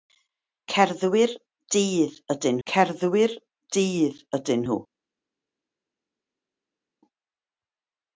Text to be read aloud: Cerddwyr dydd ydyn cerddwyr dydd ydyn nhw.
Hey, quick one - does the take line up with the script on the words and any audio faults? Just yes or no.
yes